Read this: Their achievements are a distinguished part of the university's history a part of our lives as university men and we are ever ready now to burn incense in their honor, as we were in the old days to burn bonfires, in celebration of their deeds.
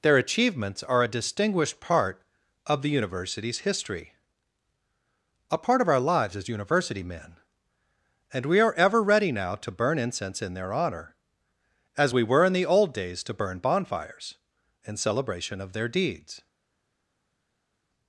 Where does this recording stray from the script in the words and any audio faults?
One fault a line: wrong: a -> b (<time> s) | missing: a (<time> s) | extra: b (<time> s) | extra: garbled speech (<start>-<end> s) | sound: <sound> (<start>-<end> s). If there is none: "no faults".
no faults